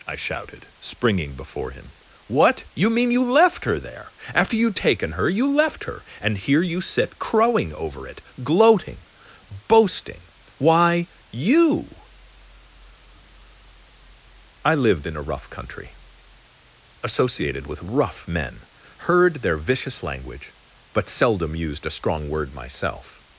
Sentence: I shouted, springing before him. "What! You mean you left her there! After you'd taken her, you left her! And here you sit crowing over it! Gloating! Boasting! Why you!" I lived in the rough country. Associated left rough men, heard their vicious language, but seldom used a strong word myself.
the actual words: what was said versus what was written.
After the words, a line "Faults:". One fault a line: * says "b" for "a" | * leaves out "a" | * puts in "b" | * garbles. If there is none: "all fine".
I shouted, springing before him. "What! You mean you left her there! After you'd taken her, you left her! And here you sit crowing over it! Gloating! Boasting! Why you!" I lived in a rough country. Associated with rough men, heard their vicious language, but seldom used a strong word myself.
Faults:
* says "a" for "the"
* says "with" for "left"